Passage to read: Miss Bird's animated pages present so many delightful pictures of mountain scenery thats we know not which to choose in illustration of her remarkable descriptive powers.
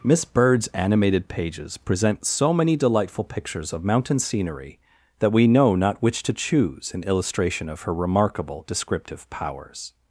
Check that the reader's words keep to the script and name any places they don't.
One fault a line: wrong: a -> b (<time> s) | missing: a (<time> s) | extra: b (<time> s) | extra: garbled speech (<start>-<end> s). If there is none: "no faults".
wrong: thats -> that (5.2 s)